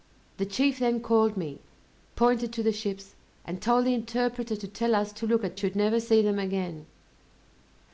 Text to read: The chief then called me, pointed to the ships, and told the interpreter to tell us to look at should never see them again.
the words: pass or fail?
pass